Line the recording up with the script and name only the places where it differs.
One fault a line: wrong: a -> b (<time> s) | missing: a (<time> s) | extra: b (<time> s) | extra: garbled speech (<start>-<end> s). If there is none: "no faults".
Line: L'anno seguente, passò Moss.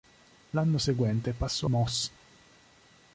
no faults